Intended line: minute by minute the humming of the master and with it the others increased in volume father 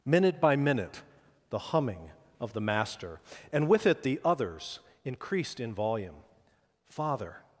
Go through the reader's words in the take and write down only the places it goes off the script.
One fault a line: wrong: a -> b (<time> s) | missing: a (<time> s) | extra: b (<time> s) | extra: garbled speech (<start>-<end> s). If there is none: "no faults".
no faults